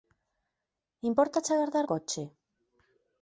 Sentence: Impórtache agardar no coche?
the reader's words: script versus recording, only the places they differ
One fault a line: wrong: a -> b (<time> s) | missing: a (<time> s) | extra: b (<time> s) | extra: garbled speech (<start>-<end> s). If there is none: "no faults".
missing: no (1.9 s)